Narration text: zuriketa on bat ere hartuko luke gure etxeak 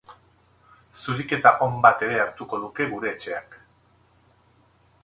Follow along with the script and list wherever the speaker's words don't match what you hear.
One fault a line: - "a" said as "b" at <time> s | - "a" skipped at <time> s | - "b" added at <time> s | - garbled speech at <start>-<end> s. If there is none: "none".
none